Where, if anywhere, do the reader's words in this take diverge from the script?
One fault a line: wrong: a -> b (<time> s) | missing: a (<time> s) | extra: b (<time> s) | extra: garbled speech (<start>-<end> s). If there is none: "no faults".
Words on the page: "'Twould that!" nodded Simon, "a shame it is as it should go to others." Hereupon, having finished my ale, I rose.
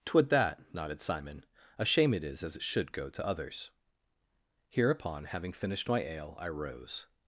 no faults